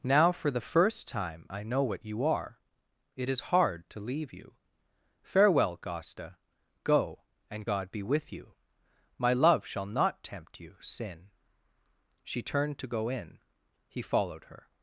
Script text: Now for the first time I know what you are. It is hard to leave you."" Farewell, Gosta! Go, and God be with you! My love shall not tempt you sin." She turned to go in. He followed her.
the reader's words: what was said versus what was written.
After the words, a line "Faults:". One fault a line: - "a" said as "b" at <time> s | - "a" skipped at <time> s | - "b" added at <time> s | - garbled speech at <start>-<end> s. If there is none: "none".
Now for the first time I know what you are. It is hard to leave you."" Farewell, Gosta! Go, and God be with you! My love shall not tempt you sin." She turned to go in. He followed her.
Faults:
none